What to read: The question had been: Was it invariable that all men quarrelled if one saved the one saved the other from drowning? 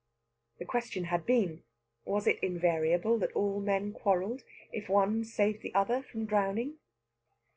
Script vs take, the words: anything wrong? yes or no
yes